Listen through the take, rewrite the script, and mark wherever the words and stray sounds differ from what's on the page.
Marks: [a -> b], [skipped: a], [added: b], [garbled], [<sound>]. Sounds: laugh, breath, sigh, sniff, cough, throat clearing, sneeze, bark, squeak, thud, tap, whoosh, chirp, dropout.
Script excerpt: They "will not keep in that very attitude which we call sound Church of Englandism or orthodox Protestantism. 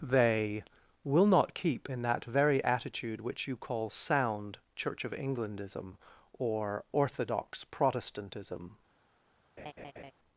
They "will not keep in that very attitude which [we -> you] call sound Church of Englandism or orthodox Protestantism. [laugh]